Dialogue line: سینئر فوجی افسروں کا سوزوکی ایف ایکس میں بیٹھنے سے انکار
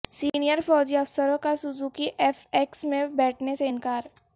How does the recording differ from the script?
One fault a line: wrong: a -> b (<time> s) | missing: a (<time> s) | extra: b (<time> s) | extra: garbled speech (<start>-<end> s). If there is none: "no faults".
no faults